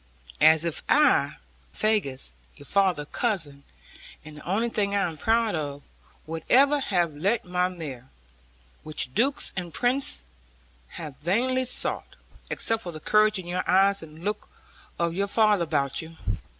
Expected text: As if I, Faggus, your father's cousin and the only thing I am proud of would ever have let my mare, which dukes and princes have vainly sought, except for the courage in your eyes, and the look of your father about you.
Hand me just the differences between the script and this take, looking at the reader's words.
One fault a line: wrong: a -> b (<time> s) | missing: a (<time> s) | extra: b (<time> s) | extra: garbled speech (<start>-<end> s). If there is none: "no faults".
no faults